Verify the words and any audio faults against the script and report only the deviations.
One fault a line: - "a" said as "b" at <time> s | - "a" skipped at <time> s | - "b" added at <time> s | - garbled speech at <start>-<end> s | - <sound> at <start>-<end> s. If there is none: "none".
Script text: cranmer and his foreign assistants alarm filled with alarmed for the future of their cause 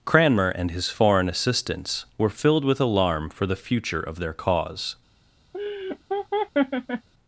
- "alarm" said as "were" at 2.2 s
- "alarmed" said as "alarm" at 2.8 s
- laugh at 5.5-7.1 s